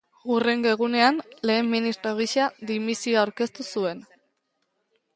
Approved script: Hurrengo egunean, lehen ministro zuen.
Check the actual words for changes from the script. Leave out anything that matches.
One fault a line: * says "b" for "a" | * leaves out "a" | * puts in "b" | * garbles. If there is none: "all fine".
* puts in "gisa dimisioa aurkeztu"